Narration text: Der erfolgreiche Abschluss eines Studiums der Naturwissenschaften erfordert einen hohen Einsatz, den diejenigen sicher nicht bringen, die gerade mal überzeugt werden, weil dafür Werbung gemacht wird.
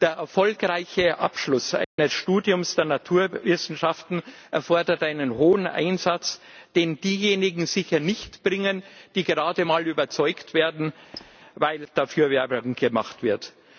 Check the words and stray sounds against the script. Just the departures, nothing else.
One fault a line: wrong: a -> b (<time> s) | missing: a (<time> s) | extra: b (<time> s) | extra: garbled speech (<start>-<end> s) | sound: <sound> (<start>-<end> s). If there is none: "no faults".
sound: dropout (1.8-2.0 s)
sound: squeak (11.1-11.4 s)